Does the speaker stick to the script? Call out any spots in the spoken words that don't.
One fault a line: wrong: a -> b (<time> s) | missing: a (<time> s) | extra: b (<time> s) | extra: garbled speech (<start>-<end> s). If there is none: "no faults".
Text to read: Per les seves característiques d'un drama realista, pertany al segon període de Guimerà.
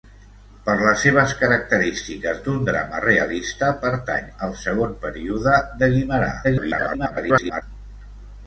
extra: garbled speech (6.4-7.6 s)